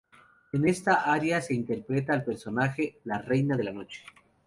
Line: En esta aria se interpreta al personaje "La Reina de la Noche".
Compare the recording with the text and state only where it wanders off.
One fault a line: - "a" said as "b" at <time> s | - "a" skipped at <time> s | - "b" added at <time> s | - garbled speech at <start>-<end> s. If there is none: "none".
none